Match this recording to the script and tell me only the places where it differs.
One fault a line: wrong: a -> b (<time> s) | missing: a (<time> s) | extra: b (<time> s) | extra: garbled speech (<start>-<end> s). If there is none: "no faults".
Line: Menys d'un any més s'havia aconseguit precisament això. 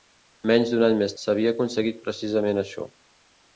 no faults